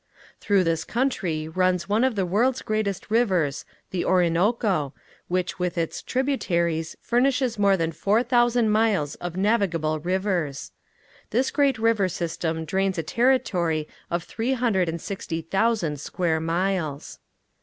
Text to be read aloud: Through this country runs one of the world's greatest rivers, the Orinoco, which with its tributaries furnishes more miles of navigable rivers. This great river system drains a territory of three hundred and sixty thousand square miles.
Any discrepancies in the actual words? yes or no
yes